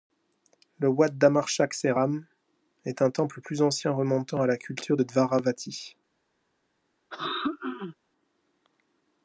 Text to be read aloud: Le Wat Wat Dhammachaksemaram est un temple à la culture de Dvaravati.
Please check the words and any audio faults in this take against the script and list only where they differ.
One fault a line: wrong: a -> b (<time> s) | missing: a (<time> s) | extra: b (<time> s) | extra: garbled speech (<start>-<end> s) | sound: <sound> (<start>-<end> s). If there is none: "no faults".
missing: Wat (1.1 s)
extra: plus ancien remontant (3.4 s)
sound: throat clearing (7.1-8.0 s)